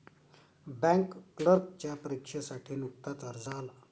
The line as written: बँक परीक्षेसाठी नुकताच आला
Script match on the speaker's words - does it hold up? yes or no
no